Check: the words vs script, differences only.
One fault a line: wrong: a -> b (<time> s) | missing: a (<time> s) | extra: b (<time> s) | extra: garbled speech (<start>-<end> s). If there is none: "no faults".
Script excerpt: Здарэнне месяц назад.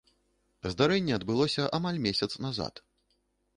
extra: адбылося амаль (1.2 s)